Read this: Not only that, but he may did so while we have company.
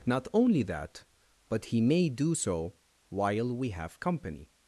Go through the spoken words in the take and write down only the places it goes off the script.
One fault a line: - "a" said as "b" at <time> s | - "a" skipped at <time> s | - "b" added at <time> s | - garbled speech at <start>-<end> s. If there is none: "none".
- "did" said as "do" at 2.1 s